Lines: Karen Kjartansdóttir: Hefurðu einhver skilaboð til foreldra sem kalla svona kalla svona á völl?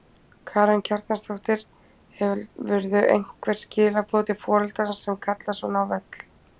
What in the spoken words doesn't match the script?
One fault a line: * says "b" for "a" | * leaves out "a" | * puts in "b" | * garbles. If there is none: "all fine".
* leaves out "kalla svona"